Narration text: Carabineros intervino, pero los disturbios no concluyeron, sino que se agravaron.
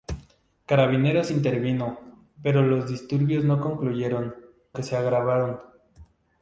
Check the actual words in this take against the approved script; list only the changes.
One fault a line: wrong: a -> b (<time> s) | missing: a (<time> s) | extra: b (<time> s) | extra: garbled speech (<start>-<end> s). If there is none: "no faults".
missing: sino (4.3 s)